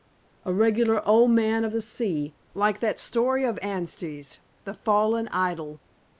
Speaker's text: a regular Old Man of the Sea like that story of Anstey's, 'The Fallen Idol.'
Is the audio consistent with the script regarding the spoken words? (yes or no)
yes